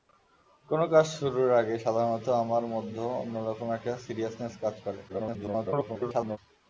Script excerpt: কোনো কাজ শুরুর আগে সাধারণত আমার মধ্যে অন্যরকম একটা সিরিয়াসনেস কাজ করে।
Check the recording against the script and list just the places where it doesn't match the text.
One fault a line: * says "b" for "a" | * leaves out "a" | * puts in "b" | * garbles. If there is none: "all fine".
* garbles